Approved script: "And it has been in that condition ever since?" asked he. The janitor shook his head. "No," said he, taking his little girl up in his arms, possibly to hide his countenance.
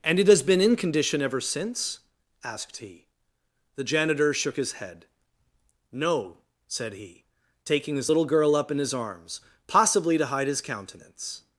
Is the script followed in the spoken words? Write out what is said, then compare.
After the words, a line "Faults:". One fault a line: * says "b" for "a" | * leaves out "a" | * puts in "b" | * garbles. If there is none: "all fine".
"And it has been in condition ever since?" asked he. The janitor shook his head. "No," said he, taking his little girl up in his arms, possibly to hide his countenance.
Faults:
* leaves out "that"